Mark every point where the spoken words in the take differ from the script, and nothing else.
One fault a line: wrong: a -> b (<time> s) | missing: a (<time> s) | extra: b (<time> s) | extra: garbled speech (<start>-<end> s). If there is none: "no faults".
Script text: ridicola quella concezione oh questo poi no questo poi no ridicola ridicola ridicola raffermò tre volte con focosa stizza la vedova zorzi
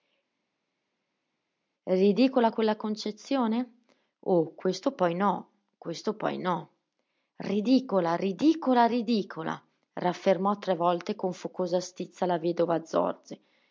no faults